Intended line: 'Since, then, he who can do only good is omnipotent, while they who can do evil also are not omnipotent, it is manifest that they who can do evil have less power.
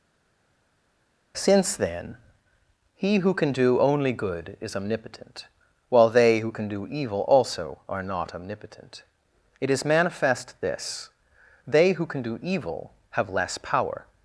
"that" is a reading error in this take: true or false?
true